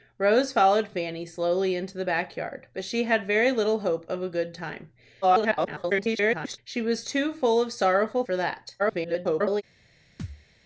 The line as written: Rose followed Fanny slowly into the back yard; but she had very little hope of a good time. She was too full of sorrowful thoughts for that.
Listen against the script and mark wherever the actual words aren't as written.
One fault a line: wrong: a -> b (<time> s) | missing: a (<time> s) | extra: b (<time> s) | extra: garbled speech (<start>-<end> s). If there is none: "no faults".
extra: garbled speech (5.2-6.6 s)
missing: thoughts (8.2 s)
extra: garbled speech (8.8-9.6 s)